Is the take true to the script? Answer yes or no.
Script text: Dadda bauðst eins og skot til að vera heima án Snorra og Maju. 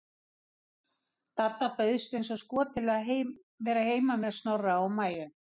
no